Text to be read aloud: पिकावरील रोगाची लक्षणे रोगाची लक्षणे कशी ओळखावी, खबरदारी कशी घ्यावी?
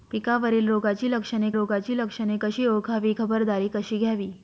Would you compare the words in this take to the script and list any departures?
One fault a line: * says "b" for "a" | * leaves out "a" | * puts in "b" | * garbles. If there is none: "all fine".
all fine